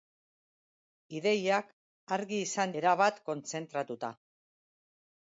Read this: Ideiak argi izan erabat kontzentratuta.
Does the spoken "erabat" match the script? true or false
true